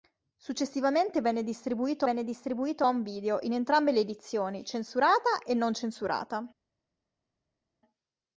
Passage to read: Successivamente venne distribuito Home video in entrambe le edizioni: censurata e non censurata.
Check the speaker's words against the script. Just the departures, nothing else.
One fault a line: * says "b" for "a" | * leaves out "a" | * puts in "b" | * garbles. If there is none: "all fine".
* puts in "venne distribuito"